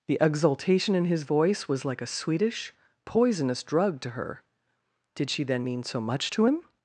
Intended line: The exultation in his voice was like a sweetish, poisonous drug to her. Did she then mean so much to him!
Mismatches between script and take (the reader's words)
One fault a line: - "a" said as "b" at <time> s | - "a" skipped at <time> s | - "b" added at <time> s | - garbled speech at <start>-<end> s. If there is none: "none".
none